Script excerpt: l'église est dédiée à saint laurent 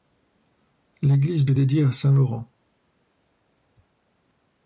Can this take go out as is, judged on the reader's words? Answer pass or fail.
pass